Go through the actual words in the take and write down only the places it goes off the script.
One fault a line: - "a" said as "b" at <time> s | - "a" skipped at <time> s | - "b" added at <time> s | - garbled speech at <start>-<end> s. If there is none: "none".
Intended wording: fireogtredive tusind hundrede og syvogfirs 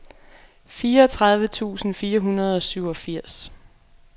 - "fire" added at 1.9 s